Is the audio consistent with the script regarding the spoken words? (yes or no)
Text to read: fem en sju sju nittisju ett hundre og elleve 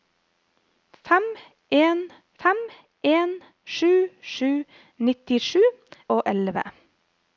no